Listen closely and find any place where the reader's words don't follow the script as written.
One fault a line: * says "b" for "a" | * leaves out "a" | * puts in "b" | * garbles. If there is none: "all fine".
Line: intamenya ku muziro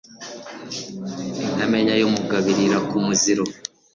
* puts in "y'umugabo irira"